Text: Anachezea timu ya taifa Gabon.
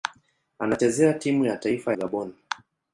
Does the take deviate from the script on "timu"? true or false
false